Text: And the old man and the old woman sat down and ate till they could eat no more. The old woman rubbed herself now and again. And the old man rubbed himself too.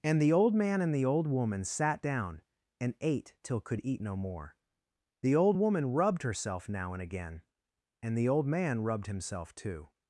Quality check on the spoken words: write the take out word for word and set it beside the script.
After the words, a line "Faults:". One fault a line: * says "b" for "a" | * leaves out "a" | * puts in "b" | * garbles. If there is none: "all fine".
And the old man and the old woman sat down and ate till could eat no more. The old woman rubbed herself now and again. And the old man rubbed himself too.
Faults:
* leaves out "they"